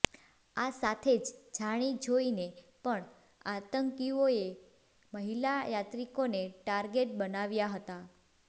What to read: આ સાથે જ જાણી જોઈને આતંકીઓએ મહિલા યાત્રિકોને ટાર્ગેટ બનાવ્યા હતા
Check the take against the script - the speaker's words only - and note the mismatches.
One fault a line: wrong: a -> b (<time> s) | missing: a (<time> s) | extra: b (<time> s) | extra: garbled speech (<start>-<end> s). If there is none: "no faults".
extra: પણ (2.9 s)